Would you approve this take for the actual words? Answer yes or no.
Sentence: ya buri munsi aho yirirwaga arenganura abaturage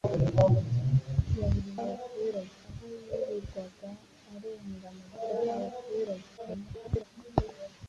no